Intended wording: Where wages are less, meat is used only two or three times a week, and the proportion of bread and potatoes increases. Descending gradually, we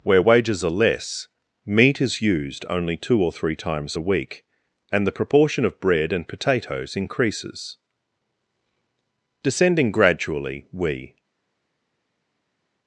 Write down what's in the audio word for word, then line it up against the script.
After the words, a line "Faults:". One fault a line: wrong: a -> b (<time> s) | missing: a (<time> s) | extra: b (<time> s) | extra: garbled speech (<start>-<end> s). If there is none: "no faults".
Where wages are less, meat is used only two or three times a week, and the proportion of bread and potatoes increases. Descending gradually, we
Faults:
no faults